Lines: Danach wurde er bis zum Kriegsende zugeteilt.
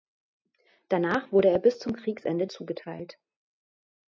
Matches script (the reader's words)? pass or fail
pass